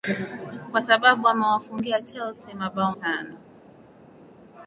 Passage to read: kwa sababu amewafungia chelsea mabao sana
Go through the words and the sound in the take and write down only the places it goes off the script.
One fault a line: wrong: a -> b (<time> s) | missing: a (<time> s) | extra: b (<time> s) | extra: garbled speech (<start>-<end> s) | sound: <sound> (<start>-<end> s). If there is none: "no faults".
no faults